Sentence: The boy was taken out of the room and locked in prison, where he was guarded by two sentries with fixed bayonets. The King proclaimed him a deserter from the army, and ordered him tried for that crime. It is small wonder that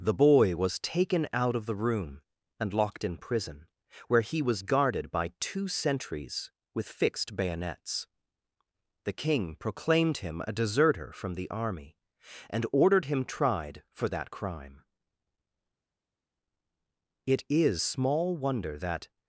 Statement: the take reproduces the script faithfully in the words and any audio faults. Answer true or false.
true